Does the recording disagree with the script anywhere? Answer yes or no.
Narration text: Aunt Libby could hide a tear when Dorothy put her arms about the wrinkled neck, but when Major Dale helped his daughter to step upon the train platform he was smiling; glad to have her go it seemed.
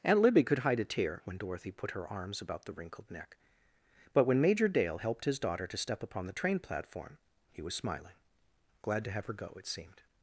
no